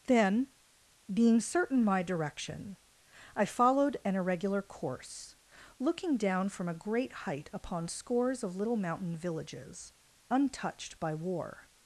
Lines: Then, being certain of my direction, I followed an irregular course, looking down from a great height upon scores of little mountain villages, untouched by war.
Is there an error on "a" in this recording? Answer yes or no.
no